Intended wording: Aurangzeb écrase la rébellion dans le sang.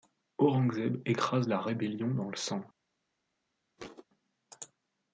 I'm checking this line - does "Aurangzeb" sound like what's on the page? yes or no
yes